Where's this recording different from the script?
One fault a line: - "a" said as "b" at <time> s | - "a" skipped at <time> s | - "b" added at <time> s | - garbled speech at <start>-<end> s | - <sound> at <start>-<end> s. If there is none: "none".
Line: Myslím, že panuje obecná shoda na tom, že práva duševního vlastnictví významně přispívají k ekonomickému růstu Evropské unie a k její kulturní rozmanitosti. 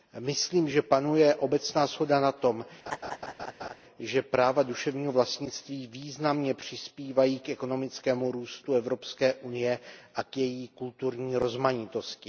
- laugh at 2.9-3.8 s